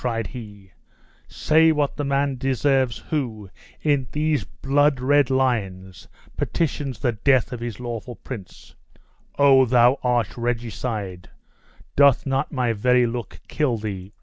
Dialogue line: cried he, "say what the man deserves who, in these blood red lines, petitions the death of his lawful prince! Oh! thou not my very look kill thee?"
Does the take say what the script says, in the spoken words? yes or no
no